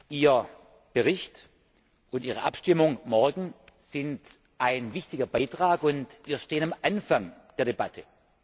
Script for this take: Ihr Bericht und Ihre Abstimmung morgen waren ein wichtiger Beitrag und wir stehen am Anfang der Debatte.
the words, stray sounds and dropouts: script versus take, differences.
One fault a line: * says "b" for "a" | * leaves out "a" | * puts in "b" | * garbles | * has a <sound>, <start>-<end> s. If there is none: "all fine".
* says "sind" for "waren"